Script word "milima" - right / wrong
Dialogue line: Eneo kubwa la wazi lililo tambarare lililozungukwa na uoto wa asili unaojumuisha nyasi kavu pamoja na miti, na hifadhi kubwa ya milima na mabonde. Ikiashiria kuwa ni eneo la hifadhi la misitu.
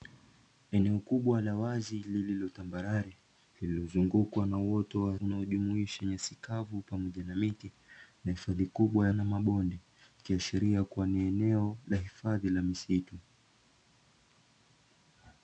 wrong